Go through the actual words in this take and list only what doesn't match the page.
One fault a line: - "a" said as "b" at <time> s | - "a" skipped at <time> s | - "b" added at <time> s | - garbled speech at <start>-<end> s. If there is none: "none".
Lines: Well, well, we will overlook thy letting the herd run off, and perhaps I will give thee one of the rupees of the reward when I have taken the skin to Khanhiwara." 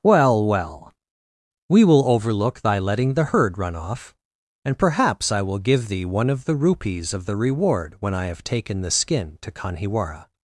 none